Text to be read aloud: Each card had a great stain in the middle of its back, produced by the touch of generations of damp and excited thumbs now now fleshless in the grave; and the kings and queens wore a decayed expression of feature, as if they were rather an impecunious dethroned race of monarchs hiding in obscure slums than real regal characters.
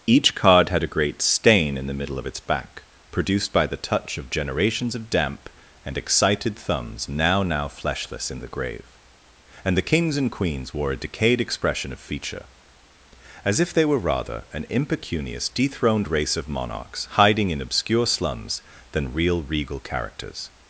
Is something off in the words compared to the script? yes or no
no